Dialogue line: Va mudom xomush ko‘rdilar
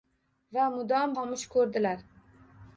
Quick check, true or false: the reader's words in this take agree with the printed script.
true